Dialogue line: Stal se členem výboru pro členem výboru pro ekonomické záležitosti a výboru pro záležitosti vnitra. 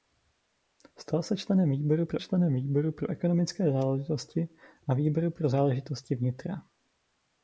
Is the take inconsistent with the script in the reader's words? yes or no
no